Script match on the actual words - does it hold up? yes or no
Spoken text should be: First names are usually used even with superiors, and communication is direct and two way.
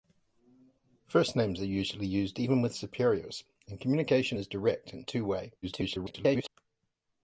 no